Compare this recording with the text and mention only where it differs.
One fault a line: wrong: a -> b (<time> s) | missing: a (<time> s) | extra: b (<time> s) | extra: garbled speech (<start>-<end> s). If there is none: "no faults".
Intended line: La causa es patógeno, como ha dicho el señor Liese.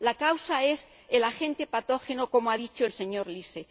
extra: el agente (1.1 s)